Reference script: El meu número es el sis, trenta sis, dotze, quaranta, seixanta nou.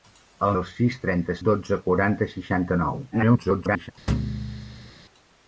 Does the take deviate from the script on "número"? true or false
true